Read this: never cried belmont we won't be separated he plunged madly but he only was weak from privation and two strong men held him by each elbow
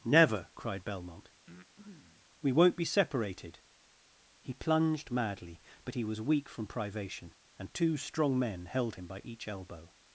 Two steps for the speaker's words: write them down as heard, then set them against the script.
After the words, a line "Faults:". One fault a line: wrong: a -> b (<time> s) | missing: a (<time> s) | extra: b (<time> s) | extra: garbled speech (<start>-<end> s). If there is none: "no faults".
never cried belmont we won't be separated he plunged madly but he was weak from privation and two strong men held him by each elbow
Faults:
missing: only (6.0 s)